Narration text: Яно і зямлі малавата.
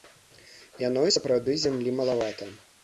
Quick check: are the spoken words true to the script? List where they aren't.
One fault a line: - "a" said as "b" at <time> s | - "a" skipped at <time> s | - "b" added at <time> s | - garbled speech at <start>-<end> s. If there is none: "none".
- "сапраўды" added at 1.2 s